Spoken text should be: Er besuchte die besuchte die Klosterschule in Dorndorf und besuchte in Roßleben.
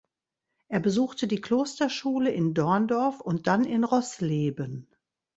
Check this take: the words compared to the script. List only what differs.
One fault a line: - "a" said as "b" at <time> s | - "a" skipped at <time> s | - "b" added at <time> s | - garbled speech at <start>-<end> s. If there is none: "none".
- "besuchte die" skipped at 1.4 s
- "besuchte" said as "dann" at 3.5 s